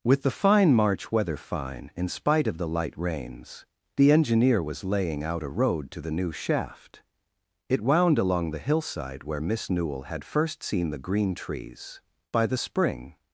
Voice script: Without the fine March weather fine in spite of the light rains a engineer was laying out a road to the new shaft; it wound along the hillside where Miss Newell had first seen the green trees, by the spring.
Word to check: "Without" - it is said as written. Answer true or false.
false